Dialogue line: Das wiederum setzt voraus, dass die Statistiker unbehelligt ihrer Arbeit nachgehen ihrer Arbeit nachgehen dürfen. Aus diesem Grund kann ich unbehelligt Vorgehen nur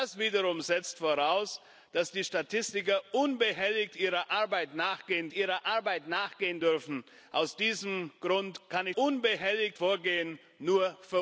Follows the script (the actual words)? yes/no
yes